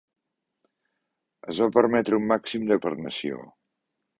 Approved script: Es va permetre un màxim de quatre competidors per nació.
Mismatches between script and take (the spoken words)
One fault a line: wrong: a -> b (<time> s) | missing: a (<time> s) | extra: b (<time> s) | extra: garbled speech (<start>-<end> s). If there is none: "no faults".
missing: quatre competidors (2.8 s)